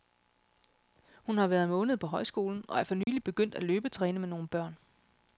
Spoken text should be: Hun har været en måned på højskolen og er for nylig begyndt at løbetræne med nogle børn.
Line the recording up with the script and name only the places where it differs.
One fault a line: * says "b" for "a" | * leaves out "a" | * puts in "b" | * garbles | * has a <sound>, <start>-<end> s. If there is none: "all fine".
* has a dropout, 3.0-3.1 s